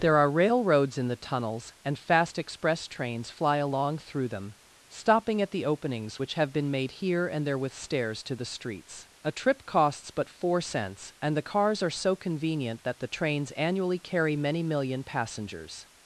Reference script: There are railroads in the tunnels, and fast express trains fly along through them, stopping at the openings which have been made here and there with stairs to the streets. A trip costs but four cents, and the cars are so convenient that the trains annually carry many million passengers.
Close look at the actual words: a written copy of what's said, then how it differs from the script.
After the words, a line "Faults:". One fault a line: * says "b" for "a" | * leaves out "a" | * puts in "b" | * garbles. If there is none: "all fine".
There are railroads in the tunnels, and fast express trains fly along through them, stopping at the openings which have been made here and there with stairs to the streets. A trip costs but four cents, and the cars are so convenient that the trains annually carry many million passengers.
Faults:
all fine